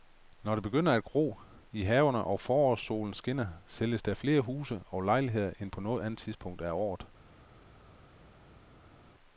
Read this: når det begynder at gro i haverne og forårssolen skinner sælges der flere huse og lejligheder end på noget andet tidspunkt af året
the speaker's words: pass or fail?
pass